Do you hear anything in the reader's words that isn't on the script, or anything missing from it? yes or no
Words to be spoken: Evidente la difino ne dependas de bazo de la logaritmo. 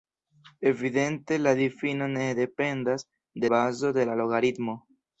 no